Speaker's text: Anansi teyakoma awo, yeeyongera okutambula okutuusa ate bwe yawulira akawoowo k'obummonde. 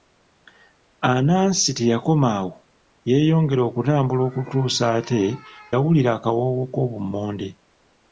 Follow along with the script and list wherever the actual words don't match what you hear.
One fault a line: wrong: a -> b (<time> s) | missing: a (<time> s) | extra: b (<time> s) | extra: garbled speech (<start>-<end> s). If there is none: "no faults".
missing: bwe (5.2 s)